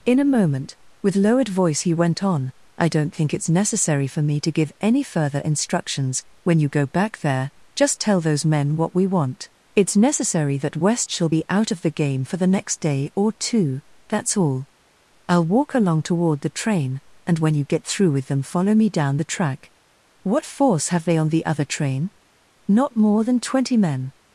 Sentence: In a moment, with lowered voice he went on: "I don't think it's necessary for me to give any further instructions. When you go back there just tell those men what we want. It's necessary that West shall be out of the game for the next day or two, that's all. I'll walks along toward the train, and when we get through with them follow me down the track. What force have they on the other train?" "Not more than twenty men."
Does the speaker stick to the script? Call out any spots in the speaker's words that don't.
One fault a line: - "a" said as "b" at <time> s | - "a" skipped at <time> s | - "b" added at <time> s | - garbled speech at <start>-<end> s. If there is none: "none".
- "walks" said as "walk" at 15.4 s
- "we" said as "you" at 17.5 s